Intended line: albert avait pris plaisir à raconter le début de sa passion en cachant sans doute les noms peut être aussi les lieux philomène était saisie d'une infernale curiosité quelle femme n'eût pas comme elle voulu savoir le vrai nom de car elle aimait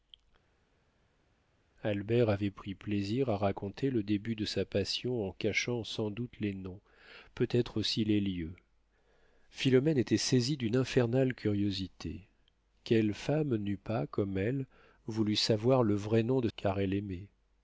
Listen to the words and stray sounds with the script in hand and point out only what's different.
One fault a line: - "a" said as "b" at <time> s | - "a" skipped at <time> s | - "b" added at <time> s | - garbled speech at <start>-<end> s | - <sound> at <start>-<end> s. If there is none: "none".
none